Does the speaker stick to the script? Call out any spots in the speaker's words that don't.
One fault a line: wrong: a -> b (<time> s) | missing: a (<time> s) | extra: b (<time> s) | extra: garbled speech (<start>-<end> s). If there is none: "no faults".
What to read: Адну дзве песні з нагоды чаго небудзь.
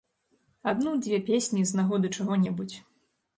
no faults